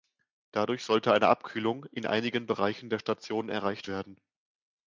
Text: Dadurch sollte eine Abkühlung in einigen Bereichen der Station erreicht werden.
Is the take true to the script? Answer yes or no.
yes